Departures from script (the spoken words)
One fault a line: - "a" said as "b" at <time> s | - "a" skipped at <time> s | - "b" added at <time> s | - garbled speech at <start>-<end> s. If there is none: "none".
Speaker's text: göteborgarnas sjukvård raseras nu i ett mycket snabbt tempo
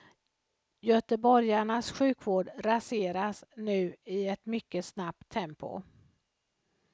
none